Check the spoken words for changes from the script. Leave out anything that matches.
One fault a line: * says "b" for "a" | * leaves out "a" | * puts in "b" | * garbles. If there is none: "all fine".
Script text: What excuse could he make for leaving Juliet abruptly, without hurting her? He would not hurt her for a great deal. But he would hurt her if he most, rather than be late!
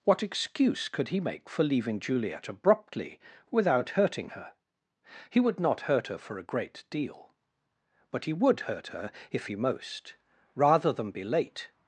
all fine